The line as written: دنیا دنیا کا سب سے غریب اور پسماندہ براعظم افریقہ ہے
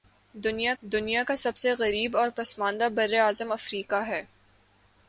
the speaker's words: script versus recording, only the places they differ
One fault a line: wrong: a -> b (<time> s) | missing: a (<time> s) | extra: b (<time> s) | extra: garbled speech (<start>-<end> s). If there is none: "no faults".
no faults